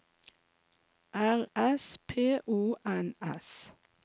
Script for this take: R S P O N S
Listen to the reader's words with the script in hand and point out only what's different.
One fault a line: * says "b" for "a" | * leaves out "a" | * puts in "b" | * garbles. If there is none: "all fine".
all fine